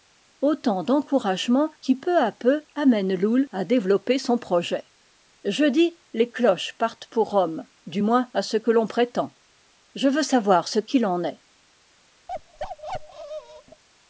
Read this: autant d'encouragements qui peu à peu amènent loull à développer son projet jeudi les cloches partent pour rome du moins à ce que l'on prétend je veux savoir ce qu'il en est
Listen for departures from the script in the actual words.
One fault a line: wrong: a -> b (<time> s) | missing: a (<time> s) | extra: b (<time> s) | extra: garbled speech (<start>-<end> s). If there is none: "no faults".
no faults